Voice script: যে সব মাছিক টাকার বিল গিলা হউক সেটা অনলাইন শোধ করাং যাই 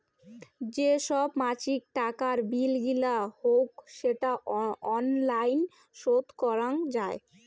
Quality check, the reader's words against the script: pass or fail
pass